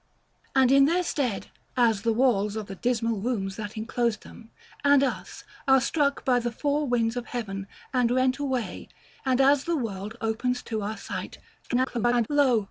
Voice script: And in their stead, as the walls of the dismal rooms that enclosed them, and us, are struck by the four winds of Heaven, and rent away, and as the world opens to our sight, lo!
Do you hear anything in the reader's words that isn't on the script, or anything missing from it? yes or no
yes